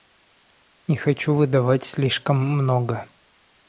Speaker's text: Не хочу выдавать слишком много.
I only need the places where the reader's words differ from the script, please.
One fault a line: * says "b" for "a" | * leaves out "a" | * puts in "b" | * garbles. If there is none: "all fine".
all fine